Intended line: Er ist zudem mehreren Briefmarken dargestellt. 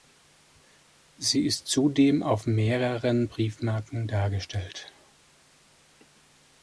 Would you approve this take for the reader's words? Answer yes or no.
no